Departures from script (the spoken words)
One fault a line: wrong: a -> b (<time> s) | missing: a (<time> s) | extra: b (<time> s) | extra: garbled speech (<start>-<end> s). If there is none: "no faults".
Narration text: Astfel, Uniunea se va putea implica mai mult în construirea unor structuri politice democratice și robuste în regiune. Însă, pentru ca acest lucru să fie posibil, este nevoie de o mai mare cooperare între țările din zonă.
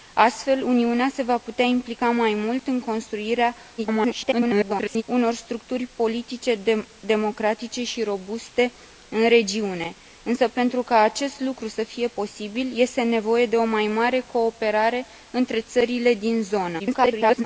extra: garbled speech (3.8-5.0 s)
extra: garbled speech (16.8-17.4 s)